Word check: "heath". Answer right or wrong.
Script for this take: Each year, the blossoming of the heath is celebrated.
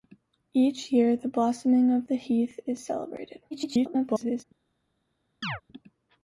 right